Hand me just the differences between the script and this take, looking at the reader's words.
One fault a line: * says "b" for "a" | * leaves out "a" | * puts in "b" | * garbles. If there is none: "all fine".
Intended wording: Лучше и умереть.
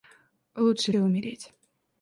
all fine